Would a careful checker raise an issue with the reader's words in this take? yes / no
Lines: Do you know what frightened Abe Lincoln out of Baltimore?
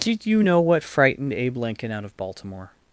yes